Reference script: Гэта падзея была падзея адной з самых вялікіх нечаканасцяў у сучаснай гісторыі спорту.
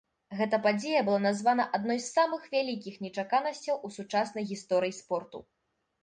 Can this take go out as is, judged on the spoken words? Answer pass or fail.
fail